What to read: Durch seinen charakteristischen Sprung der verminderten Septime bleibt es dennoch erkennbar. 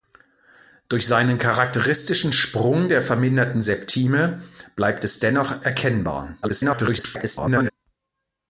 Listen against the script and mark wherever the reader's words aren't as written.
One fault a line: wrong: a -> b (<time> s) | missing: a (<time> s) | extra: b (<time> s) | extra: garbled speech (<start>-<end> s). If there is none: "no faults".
extra: garbled speech (6.4-7.7 s)